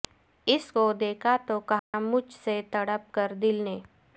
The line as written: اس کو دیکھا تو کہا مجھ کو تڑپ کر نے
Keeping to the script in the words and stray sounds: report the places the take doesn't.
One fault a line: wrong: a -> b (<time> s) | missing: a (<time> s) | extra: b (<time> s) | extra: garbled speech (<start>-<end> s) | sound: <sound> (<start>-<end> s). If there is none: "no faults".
sound: dropout (1.8-1.9 s)
wrong: کو -> سے (2.4 s)
extra: دل (3.4 s)